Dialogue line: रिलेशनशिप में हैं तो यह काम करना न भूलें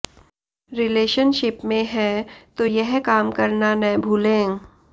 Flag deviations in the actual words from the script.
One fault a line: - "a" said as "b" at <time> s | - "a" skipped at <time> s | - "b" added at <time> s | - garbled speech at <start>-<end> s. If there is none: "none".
none